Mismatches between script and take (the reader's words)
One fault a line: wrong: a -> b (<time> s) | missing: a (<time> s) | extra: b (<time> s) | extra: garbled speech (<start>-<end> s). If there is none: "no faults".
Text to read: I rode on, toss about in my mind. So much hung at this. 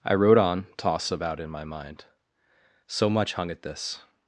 no faults